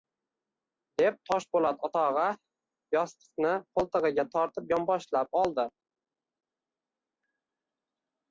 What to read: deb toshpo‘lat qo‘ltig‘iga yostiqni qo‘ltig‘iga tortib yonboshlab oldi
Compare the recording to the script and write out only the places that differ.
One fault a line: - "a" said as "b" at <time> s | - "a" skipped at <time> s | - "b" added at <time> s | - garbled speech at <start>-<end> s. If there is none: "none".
- "qo‘ltig‘iga" said as "o‘tog‘a" at 1.9 s